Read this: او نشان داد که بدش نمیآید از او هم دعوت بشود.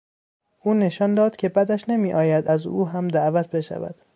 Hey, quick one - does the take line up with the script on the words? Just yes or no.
yes